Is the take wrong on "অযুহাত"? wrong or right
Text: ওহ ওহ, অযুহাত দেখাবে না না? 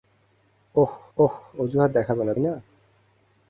right